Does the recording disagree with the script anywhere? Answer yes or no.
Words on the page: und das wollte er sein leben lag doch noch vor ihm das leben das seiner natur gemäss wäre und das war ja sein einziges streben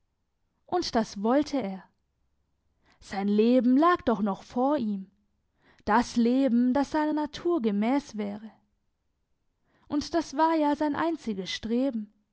no